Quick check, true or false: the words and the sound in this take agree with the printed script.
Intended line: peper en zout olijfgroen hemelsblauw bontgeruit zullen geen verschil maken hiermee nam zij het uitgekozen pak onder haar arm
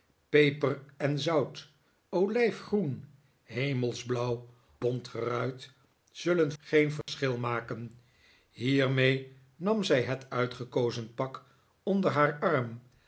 false